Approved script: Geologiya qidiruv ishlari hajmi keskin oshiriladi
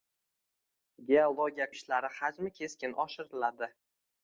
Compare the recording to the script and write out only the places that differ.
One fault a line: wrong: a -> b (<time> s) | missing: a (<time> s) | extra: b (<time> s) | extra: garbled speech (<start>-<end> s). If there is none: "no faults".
missing: qidiruv (1.7 s)